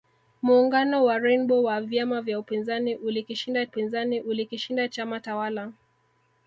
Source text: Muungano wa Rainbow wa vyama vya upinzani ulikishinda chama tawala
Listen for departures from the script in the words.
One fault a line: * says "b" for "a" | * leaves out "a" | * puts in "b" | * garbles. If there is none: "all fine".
* puts in "upinzani ulikishinda"